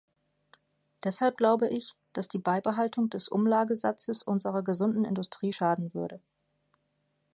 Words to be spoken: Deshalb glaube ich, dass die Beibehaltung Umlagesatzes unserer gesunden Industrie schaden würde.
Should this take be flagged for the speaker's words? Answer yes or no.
yes